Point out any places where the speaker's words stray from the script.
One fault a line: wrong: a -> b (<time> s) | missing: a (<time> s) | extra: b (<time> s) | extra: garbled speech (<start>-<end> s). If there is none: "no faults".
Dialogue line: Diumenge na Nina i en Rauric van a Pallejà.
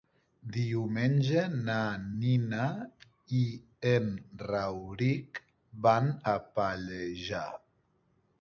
no faults